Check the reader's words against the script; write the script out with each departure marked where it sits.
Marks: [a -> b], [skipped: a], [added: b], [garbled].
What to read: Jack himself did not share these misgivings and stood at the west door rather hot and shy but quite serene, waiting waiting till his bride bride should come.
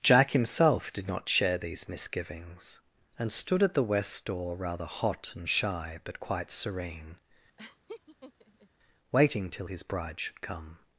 Jack himself did not share these misgivings and stood at the west door rather hot and shy but quite serene, waiting [skipped: waiting] till his bride [skipped: bride] should come.